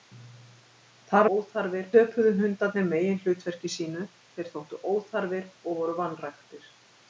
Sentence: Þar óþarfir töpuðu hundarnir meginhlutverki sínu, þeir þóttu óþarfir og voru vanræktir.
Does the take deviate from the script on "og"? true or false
false